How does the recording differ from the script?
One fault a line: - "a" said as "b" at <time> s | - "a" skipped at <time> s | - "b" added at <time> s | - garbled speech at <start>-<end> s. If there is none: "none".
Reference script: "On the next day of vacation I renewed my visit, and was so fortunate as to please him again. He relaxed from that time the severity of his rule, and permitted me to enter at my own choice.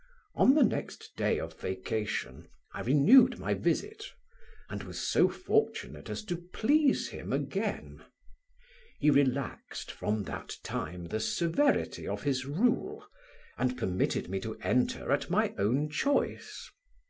none